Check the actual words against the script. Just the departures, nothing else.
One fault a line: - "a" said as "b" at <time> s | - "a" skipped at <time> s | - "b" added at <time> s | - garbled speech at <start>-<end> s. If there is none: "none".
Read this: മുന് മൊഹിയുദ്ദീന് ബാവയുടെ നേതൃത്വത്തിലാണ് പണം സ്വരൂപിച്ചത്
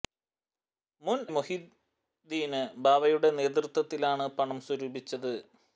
none